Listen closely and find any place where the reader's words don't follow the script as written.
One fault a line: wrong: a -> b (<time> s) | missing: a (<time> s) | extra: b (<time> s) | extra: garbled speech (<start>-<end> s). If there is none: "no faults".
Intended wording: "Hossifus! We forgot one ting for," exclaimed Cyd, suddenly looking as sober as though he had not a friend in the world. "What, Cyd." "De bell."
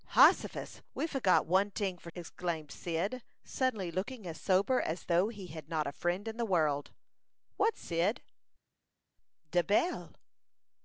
no faults